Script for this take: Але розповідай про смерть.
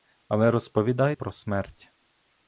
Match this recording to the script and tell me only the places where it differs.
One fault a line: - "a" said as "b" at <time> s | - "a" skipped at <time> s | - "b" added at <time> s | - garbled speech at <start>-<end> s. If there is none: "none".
none